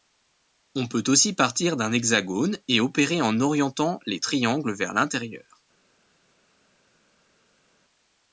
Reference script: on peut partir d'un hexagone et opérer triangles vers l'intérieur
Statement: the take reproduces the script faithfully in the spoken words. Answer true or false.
false